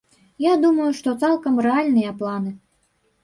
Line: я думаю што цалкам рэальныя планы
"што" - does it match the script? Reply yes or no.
yes